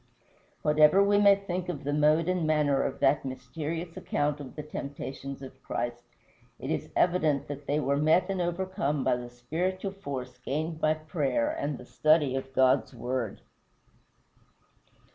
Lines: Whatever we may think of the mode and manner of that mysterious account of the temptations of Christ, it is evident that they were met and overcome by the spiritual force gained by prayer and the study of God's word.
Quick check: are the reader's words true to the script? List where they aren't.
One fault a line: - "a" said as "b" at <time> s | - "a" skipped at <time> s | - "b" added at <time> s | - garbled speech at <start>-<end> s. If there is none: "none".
none